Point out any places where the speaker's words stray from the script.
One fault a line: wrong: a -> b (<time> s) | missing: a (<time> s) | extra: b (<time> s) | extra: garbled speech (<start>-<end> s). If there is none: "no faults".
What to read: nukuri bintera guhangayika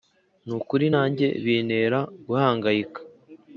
extra: nanjye (0.9 s)